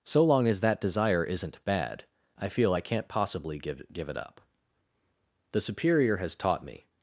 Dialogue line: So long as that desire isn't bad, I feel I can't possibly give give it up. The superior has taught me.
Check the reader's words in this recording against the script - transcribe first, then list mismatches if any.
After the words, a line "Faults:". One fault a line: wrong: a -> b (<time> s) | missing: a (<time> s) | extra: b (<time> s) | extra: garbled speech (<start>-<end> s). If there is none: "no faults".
So long as that desire isn't bad, I feel I can't possibly give give it up. The superior has taught me.
Faults:
no faults